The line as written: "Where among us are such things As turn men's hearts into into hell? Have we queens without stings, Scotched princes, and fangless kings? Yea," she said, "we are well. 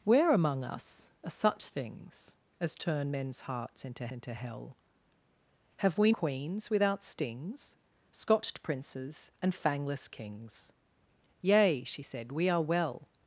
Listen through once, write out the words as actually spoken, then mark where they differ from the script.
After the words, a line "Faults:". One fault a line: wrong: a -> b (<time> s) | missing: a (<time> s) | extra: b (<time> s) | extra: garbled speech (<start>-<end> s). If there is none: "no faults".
"Where among us are such things As turn men's hearts into into hell? Have we queens without stings, Scotched princes, and fangless kings? Yea," she said, "we are well.
Faults:
no faults